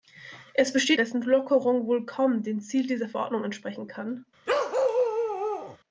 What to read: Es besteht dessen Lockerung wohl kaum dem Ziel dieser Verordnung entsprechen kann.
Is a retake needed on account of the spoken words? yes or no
no